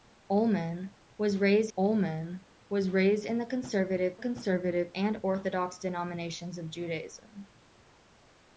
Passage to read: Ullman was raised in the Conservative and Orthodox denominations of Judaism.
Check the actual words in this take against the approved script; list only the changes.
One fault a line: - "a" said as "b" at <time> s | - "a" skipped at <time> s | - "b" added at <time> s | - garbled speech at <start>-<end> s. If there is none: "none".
- "ullman was raised" added at 1.8 s
- "Conservative" added at 4.2 s